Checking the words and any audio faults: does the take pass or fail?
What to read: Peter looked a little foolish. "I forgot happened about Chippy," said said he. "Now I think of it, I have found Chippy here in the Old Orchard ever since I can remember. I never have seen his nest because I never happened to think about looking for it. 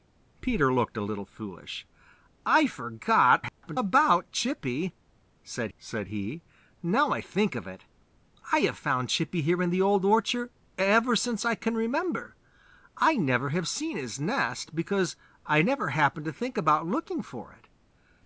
fail